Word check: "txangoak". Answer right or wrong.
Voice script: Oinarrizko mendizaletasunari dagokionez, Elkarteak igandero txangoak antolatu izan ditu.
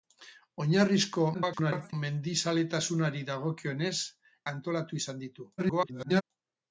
wrong